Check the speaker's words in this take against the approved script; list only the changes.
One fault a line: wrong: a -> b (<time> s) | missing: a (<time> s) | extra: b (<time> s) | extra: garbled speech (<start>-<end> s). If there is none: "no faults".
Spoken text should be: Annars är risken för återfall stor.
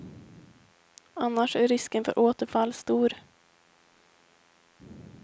no faults